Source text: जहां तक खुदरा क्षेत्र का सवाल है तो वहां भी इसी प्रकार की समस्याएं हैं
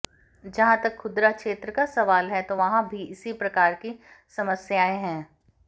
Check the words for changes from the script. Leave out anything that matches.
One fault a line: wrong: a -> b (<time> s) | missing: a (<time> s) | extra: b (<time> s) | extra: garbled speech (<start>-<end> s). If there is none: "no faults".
no faults